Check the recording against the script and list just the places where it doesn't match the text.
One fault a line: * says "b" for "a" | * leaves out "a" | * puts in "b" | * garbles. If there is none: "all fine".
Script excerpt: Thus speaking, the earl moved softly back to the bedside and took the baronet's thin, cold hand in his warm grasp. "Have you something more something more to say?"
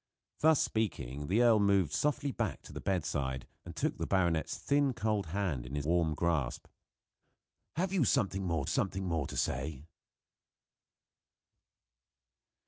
all fine